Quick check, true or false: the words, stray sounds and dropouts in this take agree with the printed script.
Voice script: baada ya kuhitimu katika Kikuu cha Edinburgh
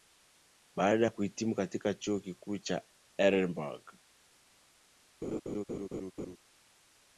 false